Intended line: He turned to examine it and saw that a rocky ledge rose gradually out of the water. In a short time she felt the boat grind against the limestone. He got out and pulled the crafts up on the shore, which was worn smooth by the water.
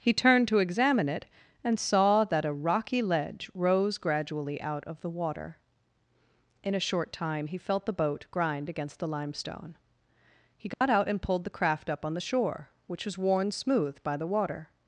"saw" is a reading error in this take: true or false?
false